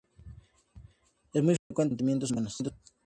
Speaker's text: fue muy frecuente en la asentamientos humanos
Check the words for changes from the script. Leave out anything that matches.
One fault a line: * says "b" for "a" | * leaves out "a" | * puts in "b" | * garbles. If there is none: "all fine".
* says "es" for "fue"
* says "los" for "la"